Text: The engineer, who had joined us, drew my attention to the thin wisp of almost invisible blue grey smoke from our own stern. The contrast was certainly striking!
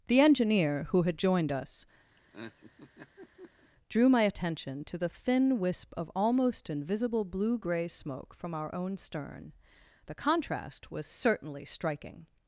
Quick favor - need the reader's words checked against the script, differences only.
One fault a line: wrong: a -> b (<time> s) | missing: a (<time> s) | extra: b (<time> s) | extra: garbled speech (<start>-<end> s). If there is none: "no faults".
no faults